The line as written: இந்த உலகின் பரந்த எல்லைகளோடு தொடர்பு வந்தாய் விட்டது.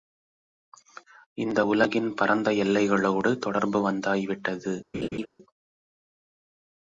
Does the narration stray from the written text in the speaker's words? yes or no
no